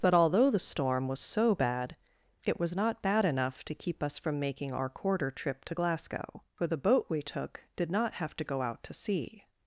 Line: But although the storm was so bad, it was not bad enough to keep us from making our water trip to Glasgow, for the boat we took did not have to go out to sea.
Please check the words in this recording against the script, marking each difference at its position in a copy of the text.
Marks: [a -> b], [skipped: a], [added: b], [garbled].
But although the storm was so bad, it was not bad enough to keep us from making our [water -> quarter] trip to Glasgow, for the boat we took did not have to go out to sea.